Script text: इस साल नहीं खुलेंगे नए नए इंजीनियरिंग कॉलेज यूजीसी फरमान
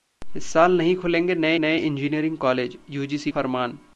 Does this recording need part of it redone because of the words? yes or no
no